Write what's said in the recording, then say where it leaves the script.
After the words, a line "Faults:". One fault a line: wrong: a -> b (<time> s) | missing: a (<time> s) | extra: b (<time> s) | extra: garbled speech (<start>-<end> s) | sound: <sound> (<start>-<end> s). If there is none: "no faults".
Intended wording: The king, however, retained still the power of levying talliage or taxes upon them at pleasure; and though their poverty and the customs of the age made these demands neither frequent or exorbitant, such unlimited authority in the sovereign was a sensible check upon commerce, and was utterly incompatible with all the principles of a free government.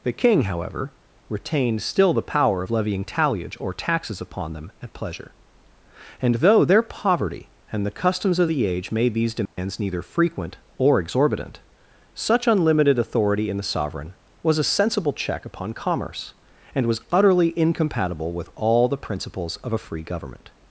The king, however, retained still the power of levying talliage or taxes upon them at pleasure; and though their poverty and the customs of the age made these demands neither frequent or exorbitant, such unlimited authority in the sovereign was a sensible check upon commerce, and was utterly incompatible with all the principles of a free government.
Faults:
sound: dropout (9.5-9.6 s)